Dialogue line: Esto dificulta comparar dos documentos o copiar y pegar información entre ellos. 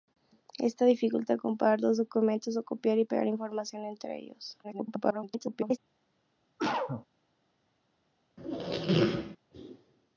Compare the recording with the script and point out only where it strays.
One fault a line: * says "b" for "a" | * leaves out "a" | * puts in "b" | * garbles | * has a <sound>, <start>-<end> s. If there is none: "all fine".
* garbles
* has a cough, 6.6-7.1 s
* has a squeak, 8.4-9.4 s